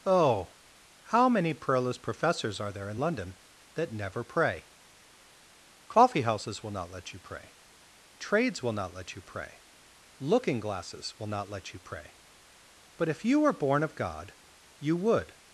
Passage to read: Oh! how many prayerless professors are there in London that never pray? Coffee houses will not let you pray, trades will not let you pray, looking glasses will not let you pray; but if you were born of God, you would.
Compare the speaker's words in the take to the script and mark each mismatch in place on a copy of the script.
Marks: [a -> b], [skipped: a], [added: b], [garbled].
Oh! how many prayerless professors are there in London that never pray? Coffee houses will not let you pray, trades will not let you pray, looking glasses will not let you pray; but if you were born of God, you would.